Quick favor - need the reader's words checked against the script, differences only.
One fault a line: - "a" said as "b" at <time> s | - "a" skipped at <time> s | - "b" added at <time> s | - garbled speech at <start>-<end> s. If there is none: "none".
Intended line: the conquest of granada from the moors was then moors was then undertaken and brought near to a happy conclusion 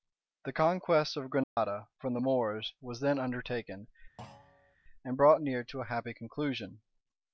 - "moors was then" skipped at 3.2 s